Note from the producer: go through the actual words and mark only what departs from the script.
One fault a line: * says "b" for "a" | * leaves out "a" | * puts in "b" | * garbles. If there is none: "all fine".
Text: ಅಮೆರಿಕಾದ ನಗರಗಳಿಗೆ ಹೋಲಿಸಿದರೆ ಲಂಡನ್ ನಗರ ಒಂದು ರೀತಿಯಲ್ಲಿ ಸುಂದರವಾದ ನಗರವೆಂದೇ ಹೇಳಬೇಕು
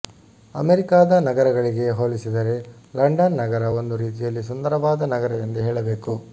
all fine